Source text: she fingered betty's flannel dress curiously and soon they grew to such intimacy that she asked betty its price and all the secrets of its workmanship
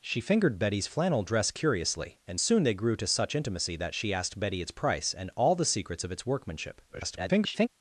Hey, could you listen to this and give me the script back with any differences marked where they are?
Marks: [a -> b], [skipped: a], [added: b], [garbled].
she fingered betty's flannel dress curiously and soon they grew to such intimacy that she asked betty its price and all the secrets of its workmanship [garbled]